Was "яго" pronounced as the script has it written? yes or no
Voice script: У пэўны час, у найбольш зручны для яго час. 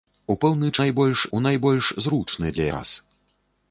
no